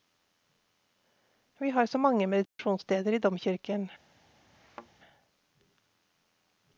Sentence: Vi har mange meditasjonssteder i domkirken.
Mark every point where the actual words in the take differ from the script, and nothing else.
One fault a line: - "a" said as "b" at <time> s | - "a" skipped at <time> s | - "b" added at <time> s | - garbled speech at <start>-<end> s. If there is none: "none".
- "så" added at 1.9 s